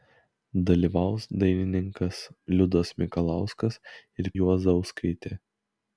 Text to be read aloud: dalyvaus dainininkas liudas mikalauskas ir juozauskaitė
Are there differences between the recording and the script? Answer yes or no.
no